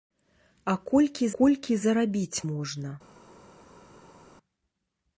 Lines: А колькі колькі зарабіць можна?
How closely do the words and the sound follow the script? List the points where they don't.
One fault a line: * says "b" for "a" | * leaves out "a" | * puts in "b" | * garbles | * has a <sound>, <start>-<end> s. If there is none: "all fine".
all fine